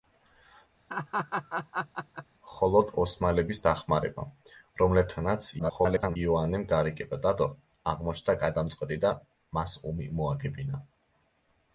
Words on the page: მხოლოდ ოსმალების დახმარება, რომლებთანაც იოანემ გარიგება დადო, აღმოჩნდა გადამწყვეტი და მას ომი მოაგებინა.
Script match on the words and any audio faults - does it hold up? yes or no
no